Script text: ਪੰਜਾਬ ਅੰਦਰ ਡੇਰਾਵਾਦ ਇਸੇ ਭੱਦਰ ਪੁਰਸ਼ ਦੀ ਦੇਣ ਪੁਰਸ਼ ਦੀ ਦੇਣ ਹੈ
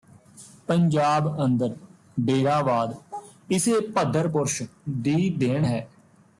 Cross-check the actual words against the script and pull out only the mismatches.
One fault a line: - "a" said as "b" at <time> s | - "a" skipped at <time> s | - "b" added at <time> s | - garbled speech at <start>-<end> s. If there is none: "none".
- "ਪੁਰਸ਼ ਦੀ ਦੇਣ" skipped at 5.6 s